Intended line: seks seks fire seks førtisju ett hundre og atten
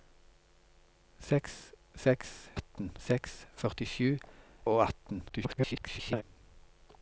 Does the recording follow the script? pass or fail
fail